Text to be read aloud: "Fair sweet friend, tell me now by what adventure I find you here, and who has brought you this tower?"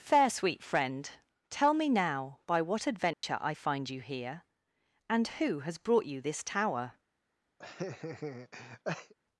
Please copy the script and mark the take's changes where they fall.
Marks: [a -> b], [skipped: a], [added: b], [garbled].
"Fair sweet friend, tell me now by what adventure I find you here, and who has brought you this tower?"